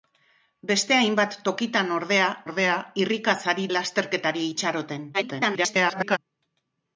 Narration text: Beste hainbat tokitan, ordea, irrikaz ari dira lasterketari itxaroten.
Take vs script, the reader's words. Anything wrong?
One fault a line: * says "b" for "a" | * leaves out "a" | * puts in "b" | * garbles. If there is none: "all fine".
* puts in "ordea"
* leaves out "dira"
* garbles